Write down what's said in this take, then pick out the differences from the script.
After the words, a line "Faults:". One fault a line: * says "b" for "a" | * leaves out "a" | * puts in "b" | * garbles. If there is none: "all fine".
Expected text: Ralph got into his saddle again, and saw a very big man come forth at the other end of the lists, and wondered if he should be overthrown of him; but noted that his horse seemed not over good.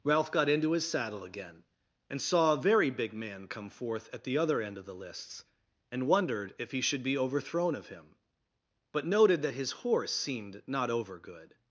Ralph got into his saddle again, and saw a very big man come forth at the other end of the lists, and wondered if he should be overthrown of him; but noted that his horse seemed not over good.
Faults:
all fine